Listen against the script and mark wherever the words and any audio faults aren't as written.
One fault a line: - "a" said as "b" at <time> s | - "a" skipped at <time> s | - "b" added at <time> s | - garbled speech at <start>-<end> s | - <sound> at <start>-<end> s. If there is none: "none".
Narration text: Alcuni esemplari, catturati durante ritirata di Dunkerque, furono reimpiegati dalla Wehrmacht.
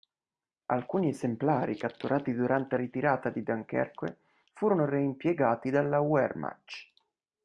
none